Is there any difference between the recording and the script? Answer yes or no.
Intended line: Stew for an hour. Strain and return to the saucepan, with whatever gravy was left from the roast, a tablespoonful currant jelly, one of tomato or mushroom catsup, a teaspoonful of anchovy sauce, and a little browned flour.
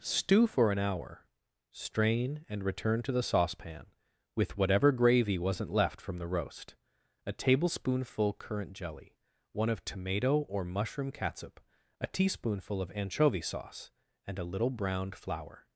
yes